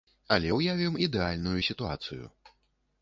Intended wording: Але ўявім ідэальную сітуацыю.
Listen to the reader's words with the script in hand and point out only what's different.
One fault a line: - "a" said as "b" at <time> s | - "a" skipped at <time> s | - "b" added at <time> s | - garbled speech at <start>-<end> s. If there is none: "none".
none